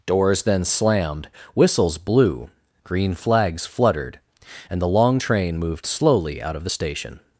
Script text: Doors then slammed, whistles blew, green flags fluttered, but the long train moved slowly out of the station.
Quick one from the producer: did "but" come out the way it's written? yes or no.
no